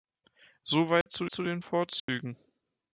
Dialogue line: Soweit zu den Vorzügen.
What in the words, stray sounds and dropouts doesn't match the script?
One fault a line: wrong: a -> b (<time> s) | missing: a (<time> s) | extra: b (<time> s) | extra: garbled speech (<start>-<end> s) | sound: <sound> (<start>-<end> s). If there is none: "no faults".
sound: dropout (1.0-1.1 s)
extra: zu (1.3 s)
sound: dropout (2.0-2.1 s)